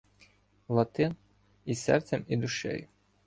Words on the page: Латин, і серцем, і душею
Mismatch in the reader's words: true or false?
false